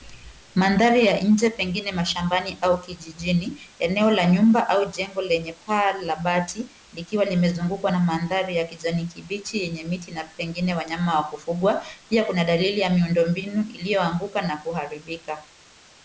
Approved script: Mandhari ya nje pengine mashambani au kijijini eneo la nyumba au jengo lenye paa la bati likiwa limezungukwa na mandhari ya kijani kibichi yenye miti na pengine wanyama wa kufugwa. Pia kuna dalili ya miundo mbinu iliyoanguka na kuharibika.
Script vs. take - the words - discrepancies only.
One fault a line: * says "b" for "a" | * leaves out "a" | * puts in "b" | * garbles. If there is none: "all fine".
all fine